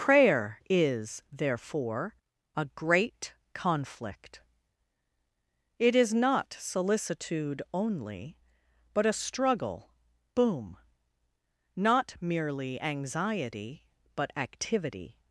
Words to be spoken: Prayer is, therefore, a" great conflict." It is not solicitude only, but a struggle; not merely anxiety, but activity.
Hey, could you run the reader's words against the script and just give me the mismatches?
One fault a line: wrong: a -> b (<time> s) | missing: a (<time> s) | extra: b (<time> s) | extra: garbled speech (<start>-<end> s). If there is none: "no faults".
extra: boom (10.4 s)